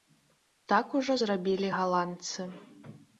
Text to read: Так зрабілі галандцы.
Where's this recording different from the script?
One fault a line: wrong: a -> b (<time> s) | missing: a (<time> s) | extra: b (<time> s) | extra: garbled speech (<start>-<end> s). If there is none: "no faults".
extra: ужо (1.0 s)